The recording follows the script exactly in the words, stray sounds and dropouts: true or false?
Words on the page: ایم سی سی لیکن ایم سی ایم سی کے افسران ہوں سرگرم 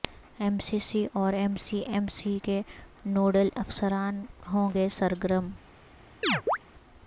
false